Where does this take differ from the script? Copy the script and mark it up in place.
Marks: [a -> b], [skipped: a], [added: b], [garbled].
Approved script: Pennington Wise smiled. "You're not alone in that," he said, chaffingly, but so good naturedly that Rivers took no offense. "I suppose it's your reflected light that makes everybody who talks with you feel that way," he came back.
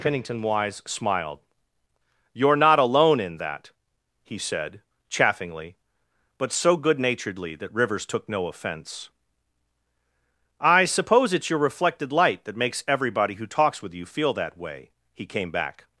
Pennington Wise smiled. "You're not alone in that," he said, chaffingly, but so good naturedly that Rivers took no offense. "I suppose it's your reflected light that makes everybody who talks with you feel that way," he came back.